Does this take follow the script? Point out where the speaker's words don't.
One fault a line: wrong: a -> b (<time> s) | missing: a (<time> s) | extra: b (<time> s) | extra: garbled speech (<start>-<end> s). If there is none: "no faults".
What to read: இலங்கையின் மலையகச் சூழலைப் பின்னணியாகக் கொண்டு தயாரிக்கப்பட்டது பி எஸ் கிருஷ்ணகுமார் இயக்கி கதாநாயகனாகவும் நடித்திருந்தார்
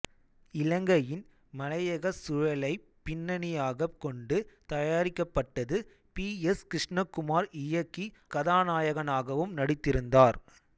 no faults